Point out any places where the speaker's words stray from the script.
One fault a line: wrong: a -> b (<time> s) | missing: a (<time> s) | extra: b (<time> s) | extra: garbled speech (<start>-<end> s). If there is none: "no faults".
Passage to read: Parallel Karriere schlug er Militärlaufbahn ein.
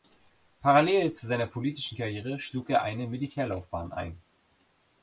extra: zu seiner politischen (1.1 s)
extra: eine (2.8 s)